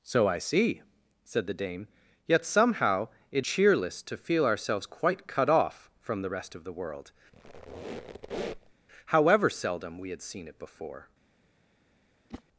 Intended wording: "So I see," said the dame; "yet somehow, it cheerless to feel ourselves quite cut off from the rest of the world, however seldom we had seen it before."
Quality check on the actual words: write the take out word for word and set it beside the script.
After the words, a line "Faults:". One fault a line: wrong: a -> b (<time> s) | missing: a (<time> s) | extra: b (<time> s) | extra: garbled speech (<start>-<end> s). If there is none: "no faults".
"So I see," said the dame; "yet somehow, it cheerless to feel ourselves quite cut off from the rest of the world, however seldom we had seen it before."
Faults:
no faults